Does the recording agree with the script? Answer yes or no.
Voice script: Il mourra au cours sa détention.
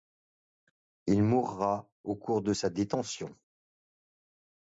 no